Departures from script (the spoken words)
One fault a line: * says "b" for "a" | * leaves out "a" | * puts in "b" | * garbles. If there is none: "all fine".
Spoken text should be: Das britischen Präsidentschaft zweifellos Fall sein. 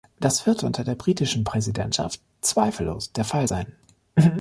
* puts in "wird unter der"
* puts in "der"